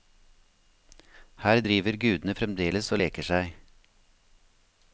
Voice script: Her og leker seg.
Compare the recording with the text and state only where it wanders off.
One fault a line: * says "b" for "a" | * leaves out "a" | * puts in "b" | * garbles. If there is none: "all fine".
* puts in "driver gudene fremdeles"